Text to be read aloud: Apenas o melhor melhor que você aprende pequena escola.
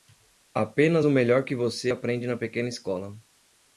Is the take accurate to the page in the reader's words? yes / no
no